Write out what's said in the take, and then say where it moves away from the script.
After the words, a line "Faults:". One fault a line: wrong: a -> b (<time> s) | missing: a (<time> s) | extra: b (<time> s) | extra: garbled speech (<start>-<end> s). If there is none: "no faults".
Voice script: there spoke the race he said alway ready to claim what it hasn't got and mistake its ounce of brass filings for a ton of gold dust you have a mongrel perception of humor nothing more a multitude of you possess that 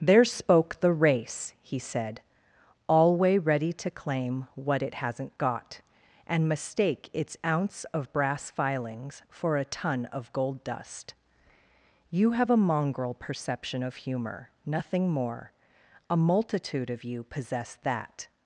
there spoke the race he said alway ready to claim what it hasn't got and mistake its ounce of brass filings for a ton of gold dust you have a mongrel perception of humor nothing more a multitude of you possess that
Faults:
no faults